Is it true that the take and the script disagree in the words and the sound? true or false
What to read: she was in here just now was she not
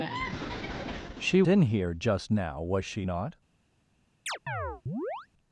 true